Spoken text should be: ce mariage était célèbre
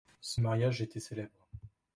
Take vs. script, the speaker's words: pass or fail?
pass